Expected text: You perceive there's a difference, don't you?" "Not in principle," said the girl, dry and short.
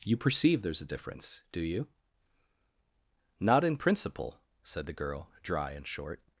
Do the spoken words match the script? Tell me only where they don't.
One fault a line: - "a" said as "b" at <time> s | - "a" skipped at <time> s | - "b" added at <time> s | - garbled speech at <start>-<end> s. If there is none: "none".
- "don't" said as "do" at 1.5 s